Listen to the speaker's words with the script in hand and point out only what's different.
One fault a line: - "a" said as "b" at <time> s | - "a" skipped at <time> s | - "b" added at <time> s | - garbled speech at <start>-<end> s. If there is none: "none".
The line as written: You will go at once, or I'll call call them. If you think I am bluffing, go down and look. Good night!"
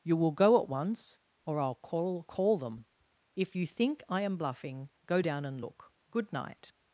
none